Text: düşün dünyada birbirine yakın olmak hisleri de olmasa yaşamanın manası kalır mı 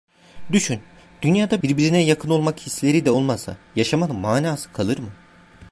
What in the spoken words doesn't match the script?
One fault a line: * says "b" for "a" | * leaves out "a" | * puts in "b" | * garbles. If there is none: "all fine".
all fine